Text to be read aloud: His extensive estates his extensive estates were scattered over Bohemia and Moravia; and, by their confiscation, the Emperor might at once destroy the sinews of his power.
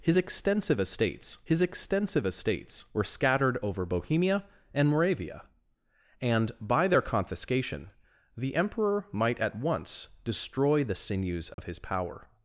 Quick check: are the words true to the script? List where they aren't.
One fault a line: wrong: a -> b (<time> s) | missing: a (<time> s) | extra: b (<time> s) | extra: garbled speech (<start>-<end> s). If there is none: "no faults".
no faults